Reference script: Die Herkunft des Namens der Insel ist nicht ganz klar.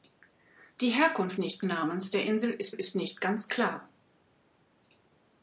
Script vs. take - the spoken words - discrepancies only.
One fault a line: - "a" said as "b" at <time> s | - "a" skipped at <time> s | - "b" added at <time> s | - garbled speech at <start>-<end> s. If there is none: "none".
- "des" said as "nicht" at 1.4 s
- "ist" added at 2.7 s